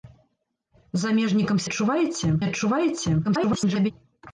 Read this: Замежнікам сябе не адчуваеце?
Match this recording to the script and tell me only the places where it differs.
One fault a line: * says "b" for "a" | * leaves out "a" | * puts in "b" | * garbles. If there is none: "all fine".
* says "адчуваеце" for "сябе"
* garbles